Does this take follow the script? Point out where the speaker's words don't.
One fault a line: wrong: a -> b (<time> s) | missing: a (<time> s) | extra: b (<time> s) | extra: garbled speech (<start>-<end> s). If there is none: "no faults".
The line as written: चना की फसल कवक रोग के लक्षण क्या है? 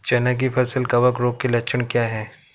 no faults